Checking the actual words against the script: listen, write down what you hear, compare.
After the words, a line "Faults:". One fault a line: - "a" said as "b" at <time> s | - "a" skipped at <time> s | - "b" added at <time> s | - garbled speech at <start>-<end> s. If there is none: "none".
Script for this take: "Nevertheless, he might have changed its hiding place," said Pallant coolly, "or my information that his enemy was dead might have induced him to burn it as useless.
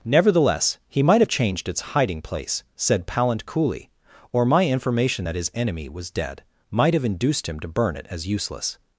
"Nevertheless, he might have changed its hiding place," said Pallant coolly, "or my information that his enemy was dead might have induced him to burn it as useless.
Faults:
none